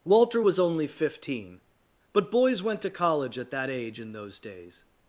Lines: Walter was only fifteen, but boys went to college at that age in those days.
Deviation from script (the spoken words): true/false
false